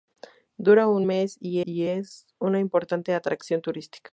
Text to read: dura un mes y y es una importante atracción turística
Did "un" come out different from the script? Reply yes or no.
no